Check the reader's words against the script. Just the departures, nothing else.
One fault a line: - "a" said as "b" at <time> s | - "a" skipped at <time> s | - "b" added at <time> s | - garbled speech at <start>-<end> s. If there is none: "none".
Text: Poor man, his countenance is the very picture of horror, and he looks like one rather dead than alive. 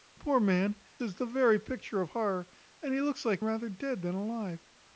- "his countenance" skipped at 0.8 s
- "one" skipped at 3.4 s